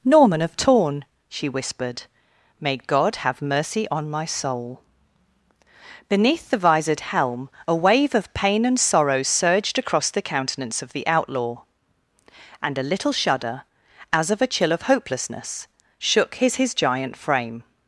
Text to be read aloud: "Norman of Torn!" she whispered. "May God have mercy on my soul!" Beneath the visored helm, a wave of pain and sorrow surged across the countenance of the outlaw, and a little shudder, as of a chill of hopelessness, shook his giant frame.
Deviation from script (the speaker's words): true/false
true